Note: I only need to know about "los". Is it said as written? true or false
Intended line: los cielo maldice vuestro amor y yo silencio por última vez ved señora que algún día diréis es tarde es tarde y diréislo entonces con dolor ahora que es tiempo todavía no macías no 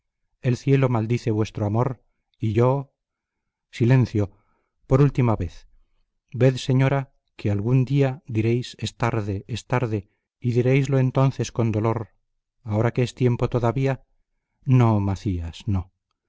false